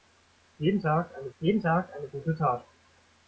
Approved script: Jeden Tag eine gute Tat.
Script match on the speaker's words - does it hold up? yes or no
no